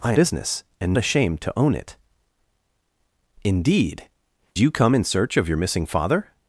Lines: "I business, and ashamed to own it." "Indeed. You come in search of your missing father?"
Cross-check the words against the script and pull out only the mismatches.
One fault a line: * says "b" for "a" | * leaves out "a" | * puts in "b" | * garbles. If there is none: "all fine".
all fine